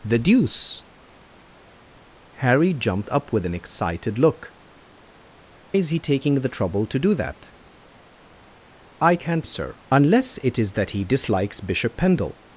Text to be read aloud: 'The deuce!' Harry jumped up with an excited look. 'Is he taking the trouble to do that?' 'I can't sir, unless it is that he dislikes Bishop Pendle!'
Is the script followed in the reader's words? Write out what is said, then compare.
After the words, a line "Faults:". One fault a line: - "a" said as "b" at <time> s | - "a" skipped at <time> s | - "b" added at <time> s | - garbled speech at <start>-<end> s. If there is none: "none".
'The deuce!' Harry jumped up with an excited look. 'Is he taking the trouble to do that?' 'I can't sir, unless it is that he dislikes Bishop Pendle!'
Faults:
none